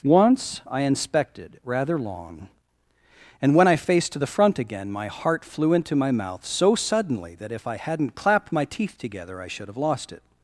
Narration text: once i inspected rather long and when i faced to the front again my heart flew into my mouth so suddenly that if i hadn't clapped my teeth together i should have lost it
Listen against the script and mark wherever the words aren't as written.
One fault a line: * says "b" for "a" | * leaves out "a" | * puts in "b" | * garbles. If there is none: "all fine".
all fine